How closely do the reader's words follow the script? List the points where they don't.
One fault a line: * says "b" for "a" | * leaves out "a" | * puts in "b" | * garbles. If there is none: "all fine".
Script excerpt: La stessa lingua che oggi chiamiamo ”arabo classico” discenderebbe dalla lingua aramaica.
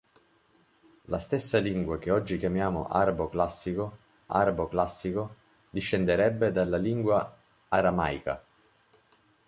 * puts in "arabo classico"